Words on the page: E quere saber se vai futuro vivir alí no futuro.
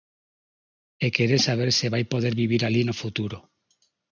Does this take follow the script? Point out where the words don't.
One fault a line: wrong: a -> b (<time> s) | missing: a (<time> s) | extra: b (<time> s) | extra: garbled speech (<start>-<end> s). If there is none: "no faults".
wrong: futuro -> poder (2.1 s)